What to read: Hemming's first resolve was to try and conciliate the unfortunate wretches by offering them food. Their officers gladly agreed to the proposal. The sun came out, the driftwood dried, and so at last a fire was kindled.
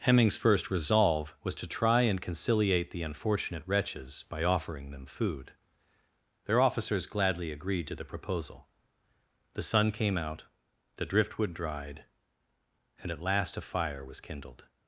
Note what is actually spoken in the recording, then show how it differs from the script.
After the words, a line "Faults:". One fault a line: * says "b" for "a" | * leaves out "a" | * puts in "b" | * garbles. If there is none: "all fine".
Hemming's first resolve was to try and conciliate the unfortunate wretches by offering them food. Their officers gladly agreed to the proposal. The sun came out, the driftwood dried, and at last a fire was kindled.
Faults:
* leaves out "so"